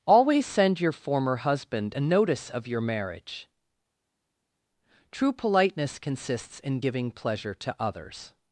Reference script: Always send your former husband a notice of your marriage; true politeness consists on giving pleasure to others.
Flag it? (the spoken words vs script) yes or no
yes